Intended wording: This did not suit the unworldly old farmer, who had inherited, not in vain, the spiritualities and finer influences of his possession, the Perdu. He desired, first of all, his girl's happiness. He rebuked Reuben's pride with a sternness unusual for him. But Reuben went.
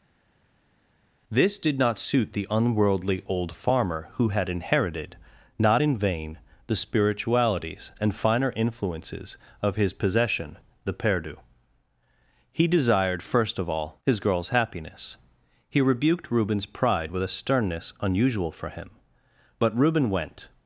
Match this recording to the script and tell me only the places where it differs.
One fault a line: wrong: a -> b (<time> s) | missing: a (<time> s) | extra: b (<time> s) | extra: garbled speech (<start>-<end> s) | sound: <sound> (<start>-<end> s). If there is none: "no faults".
no faults